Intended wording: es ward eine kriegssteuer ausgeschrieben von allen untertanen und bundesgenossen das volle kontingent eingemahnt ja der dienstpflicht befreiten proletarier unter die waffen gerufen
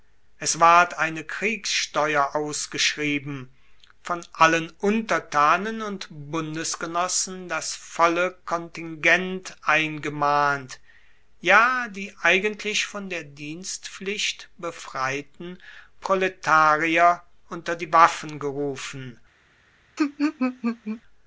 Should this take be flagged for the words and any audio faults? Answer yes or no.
yes